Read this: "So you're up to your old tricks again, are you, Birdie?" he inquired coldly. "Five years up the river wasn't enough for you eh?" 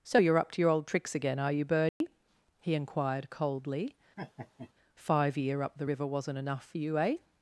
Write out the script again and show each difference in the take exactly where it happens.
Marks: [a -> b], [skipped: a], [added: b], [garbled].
"So you're up to your old tricks again, are you, Birdie?" he inquired coldly. "Five [years -> year] up the river wasn't enough for you eh?"